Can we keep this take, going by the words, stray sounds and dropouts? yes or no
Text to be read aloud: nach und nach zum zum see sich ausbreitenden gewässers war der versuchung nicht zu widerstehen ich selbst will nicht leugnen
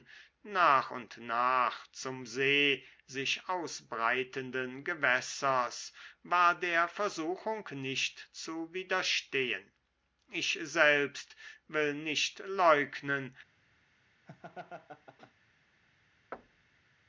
no